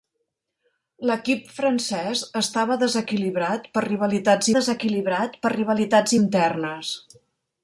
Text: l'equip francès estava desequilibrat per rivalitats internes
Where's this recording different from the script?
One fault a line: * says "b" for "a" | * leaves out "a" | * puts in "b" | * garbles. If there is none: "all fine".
* puts in "desequilibrat per rivalitats"